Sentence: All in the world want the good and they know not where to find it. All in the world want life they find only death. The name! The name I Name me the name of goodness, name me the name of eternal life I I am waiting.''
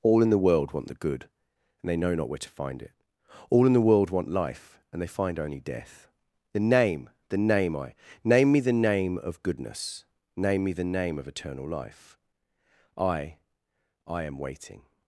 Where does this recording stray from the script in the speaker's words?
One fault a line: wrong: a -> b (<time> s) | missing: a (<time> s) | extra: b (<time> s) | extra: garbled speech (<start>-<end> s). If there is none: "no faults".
extra: and (4.9 s)